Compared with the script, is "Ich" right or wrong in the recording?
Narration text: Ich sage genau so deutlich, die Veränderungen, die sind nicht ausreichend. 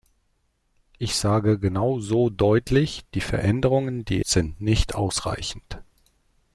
right